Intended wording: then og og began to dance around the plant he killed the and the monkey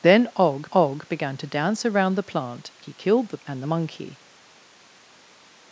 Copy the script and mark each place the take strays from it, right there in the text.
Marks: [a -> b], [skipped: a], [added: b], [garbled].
then og og began to dance around the plant he killed the and the monkey